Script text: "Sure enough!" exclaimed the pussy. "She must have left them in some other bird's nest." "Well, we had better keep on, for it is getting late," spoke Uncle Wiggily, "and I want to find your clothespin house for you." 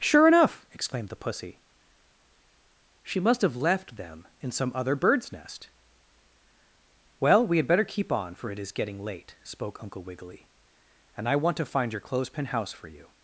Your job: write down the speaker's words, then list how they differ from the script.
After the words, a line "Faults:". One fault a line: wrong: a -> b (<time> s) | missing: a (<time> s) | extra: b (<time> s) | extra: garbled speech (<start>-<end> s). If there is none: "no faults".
"Sure enough!" exclaimed the pussy. "She must have left them in some other bird's nest." "Well, we had better keep on, for it is getting late," spoke Uncle Wiggily, "and I want to find your clothespin house for you."
Faults:
no faults